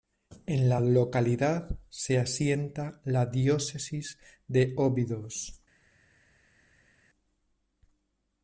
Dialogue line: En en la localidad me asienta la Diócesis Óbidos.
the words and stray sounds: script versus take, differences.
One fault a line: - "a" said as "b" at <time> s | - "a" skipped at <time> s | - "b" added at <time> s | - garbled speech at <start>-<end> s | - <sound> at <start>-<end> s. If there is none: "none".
- "en" skipped at 0.7 s
- "me" said as "se" at 1.9 s
- "de" added at 4.5 s